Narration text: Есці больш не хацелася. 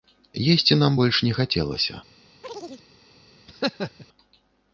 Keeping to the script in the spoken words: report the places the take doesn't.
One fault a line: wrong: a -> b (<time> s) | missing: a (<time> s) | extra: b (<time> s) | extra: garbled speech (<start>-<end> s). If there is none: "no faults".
extra: нам (0.8 s)